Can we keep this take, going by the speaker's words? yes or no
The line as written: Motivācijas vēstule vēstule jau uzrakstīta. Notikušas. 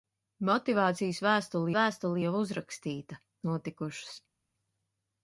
yes